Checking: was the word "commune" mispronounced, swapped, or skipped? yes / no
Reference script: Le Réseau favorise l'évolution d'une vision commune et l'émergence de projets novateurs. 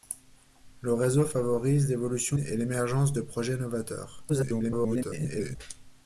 yes